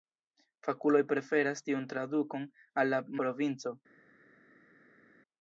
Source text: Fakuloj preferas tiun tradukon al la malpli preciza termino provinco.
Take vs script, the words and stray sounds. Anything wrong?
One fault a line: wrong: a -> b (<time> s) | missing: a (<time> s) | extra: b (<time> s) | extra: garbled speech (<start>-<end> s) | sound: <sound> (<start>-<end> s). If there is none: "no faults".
missing: malpli preciza termino (3.0 s)